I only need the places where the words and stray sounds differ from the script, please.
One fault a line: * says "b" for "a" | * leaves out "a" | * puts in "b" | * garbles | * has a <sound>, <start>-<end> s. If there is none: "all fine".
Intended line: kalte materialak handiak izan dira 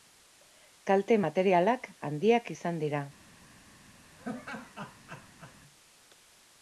* has a laugh, 4.2-5.6 s